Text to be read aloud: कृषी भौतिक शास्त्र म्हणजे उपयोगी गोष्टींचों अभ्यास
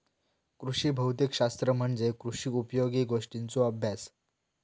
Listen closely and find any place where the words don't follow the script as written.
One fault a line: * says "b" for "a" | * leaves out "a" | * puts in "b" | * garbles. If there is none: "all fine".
* puts in "कृषी"